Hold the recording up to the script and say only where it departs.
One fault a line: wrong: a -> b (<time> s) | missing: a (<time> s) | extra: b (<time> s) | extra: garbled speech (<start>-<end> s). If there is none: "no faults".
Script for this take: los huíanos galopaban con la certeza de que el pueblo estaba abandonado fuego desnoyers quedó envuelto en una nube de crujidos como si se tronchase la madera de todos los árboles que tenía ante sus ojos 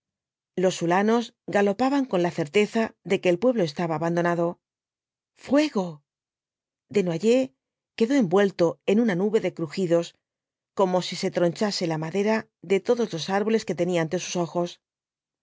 no faults